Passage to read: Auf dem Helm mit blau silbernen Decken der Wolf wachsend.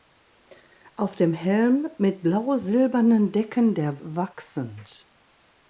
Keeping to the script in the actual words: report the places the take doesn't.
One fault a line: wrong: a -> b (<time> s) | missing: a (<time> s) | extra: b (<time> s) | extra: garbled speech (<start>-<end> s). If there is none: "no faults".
missing: Wolf (4.0 s)